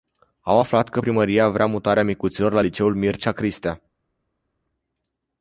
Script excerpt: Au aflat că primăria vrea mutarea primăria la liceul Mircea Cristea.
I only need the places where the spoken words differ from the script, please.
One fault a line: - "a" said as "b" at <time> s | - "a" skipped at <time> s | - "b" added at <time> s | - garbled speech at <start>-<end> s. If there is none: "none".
- "primăria" said as "micuților" at 2.0 s